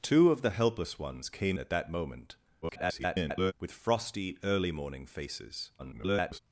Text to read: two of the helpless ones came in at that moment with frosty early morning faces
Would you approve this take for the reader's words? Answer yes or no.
no